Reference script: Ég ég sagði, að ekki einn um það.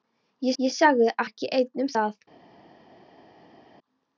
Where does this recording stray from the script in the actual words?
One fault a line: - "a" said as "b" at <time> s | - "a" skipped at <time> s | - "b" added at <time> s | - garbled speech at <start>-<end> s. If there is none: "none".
none